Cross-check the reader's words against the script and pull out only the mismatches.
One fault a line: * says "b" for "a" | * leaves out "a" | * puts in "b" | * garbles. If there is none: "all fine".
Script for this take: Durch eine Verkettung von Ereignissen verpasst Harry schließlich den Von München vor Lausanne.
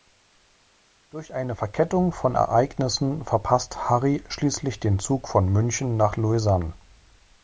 * puts in "Zug"
* says "nach" for "vor"